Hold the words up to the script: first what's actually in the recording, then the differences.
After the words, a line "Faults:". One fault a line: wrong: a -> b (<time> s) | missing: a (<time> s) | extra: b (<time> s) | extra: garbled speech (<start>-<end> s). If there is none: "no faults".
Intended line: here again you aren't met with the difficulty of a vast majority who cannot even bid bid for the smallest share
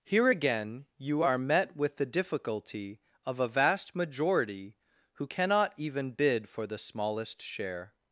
here again you are met with the difficulty of a vast majority who cannot even bid for the smallest share
Faults:
wrong: aren't -> are (1.2 s)
missing: bid (6.5 s)